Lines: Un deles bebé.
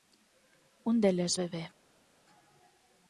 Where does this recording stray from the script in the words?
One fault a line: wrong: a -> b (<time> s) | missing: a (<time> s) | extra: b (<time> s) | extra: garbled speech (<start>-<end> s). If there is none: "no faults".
no faults